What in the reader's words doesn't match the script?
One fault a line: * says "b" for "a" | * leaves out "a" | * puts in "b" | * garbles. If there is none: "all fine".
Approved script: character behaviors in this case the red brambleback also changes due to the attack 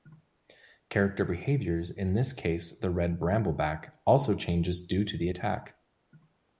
all fine